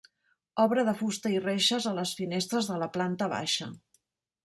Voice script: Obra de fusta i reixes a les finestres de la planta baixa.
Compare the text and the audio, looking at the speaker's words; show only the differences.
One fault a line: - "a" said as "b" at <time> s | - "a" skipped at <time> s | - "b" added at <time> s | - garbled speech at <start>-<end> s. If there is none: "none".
none